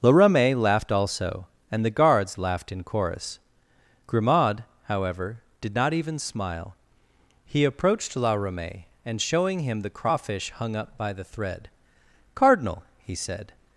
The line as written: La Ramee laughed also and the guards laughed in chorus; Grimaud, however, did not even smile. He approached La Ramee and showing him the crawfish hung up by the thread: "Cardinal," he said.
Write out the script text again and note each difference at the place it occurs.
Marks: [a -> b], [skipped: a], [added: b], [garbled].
La Ramee laughed also and the guards laughed in chorus; Grimaud, however, did not even smile. He approached La Ramee and showing him the crawfish hung up by the thread: "Cardinal," he said.